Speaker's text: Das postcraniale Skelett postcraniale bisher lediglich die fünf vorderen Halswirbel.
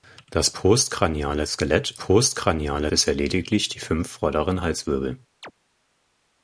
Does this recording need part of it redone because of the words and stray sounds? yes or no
yes